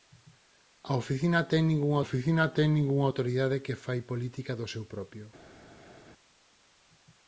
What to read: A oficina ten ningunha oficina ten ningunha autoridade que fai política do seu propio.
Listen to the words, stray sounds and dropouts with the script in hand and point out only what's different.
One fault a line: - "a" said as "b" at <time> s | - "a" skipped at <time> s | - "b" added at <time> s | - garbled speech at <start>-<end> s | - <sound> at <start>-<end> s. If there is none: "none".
none